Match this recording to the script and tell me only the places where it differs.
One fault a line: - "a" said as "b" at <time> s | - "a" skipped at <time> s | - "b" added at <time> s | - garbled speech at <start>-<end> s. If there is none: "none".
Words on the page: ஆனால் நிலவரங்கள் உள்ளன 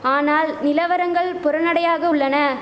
- "புறநடையாக" added at 1.4 s